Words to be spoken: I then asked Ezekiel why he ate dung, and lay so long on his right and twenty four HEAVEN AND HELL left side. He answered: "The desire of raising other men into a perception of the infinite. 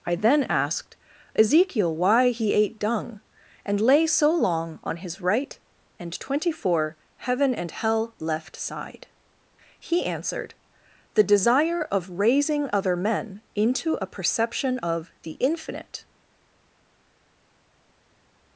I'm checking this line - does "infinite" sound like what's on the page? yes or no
yes